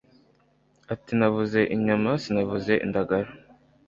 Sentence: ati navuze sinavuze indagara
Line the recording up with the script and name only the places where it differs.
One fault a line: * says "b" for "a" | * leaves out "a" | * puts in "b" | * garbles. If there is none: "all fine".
* puts in "inyama"